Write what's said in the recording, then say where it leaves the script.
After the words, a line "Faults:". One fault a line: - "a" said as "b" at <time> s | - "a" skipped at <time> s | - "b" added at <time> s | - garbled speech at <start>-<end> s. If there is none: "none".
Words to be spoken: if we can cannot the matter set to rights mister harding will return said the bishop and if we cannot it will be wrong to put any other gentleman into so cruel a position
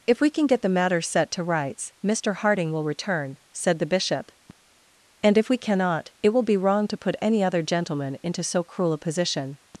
if we can get the matter set to rights mister harding will return said the bishop and if we cannot it will be wrong to put any other gentleman into so cruel a position
Faults:
- "cannot" said as "get" at 0.5 s